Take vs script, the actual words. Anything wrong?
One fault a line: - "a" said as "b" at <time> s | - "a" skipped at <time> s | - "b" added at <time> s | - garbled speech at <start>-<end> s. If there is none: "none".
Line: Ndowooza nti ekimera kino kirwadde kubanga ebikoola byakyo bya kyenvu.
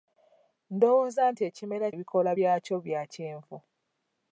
- "kino kirwadde kubanga" skipped at 1.9 s